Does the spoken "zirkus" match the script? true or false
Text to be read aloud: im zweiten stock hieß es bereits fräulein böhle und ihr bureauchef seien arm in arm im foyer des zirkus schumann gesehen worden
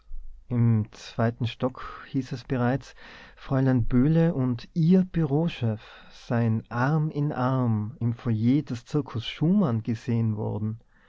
true